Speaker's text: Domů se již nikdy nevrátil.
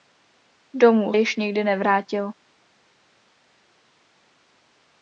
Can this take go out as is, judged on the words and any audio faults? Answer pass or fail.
fail